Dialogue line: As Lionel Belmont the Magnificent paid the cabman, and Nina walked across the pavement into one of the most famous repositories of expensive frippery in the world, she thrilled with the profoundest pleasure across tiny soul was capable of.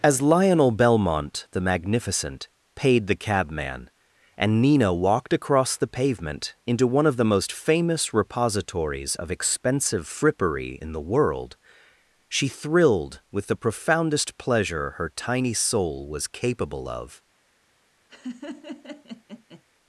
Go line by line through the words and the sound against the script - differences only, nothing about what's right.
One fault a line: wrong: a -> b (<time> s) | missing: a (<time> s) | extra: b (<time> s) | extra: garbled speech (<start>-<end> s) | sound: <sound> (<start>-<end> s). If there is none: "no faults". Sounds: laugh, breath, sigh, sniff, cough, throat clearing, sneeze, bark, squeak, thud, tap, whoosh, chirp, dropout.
wrong: across -> her (15.0 s)
sound: laugh (18.1-19.6 s)